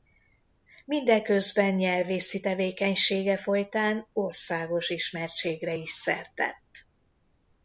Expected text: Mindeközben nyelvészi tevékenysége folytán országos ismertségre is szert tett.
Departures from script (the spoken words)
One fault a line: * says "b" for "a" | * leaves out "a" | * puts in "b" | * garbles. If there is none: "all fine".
all fine